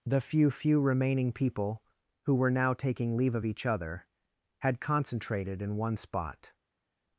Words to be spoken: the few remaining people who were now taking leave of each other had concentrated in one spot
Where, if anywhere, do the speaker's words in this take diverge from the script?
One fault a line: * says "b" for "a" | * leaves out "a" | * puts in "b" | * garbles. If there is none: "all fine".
* puts in "few"